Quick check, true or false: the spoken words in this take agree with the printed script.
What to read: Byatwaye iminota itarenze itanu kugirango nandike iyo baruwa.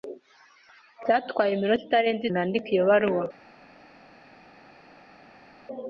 false